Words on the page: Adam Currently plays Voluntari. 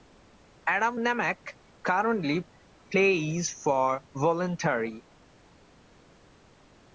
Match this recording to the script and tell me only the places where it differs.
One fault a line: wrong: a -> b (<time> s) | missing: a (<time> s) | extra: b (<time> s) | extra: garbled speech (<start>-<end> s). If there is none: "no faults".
extra: Nemec (1.0 s)
extra: for (3.5 s)